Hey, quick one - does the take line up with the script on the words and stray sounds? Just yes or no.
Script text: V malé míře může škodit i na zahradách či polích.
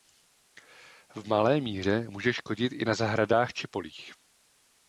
yes